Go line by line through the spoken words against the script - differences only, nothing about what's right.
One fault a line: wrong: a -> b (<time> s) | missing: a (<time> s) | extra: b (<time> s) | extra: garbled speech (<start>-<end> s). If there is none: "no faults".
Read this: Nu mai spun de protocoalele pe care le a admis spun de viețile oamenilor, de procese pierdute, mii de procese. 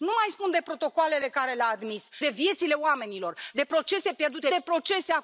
missing: spun (2.1 s)
missing: mii (4.5 s)